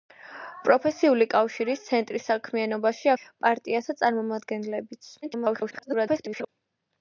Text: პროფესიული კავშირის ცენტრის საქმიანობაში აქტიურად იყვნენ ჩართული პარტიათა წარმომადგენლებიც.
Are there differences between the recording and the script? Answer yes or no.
yes